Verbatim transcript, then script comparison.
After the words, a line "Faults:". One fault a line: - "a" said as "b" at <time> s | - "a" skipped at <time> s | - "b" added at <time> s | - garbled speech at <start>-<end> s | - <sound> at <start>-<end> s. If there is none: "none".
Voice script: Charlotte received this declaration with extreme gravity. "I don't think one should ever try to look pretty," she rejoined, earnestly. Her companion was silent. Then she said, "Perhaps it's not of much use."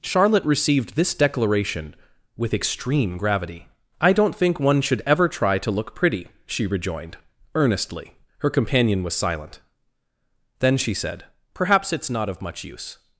Charlotte received this declaration with extreme gravity. "I don't think one should ever try to look pretty," she rejoined, earnestly. Her companion was silent. Then she said, "Perhaps it's not of much use."
Faults:
none